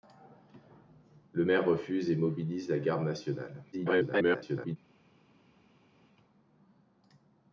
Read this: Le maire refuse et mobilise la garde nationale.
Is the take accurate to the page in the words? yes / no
no